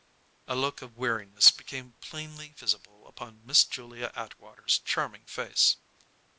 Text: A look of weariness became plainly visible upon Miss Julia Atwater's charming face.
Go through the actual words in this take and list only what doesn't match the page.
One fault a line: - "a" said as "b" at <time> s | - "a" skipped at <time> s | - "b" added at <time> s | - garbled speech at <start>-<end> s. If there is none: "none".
none